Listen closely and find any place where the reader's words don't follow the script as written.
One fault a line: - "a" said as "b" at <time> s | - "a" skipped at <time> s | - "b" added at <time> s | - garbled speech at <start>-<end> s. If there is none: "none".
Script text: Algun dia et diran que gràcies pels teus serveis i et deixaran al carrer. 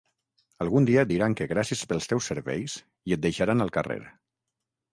none